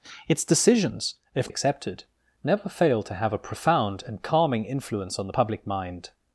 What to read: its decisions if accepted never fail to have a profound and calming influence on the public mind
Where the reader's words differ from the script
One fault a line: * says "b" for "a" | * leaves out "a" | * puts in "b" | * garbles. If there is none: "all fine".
all fine